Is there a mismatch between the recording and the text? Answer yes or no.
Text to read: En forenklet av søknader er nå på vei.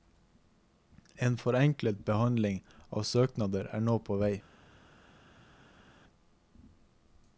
yes